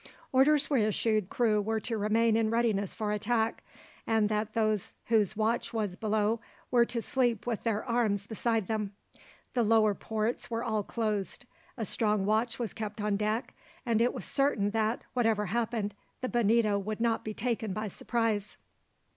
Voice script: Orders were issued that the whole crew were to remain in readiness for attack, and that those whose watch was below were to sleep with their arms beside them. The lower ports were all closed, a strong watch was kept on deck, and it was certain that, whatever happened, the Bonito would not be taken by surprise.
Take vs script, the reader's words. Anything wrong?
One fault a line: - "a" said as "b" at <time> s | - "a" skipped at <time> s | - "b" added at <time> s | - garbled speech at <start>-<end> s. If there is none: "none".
- "that the whole" skipped at 1.3 s